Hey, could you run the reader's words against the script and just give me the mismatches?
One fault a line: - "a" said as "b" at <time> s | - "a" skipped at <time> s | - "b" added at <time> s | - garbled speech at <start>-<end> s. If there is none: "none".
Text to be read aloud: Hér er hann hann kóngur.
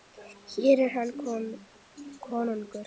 - "hann" skipped at 1.1 s